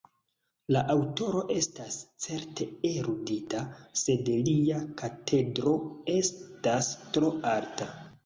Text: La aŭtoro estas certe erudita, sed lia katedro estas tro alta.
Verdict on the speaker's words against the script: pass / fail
pass